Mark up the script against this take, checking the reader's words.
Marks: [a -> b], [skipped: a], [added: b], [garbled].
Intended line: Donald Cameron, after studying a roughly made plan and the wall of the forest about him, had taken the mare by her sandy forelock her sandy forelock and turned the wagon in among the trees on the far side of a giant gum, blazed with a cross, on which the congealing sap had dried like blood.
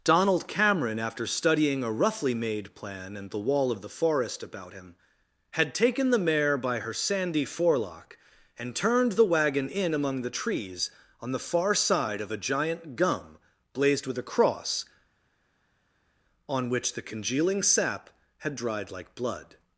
Donald Cameron, after studying a roughly made plan and the wall of the forest about him, had taken the mare by her sandy forelock [skipped: her sandy forelock] and turned the wagon in among the trees on the far side of a giant gum, blazed with a cross, on which the congealing sap had dried like blood.